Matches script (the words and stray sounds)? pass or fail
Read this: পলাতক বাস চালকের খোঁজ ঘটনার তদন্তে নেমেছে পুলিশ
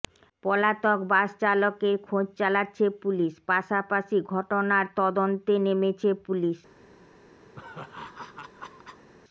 fail